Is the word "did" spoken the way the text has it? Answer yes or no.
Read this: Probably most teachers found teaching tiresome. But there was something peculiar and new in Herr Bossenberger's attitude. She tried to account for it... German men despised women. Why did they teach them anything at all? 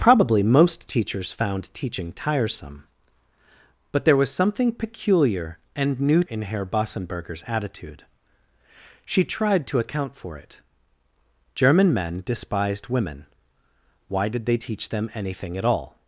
yes